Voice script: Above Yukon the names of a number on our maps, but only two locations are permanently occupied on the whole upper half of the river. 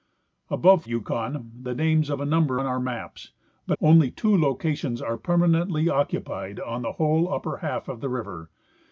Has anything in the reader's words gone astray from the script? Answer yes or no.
no